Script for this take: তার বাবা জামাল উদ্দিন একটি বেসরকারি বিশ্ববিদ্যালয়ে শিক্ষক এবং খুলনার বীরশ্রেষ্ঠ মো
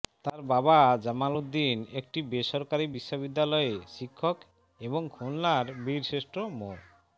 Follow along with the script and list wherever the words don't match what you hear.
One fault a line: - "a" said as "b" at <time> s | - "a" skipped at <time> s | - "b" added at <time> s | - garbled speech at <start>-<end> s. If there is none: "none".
none